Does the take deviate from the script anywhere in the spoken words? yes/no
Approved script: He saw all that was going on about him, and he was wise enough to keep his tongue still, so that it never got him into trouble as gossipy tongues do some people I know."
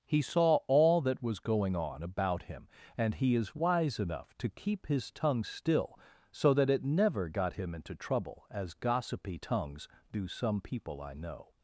yes